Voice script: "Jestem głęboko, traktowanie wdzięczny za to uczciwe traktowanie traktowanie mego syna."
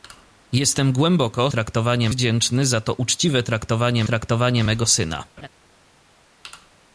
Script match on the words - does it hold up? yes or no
yes